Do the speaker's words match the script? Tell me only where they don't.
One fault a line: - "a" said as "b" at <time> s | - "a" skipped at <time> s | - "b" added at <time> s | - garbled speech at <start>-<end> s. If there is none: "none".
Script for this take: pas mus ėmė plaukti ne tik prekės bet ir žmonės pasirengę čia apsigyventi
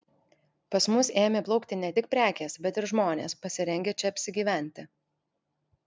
none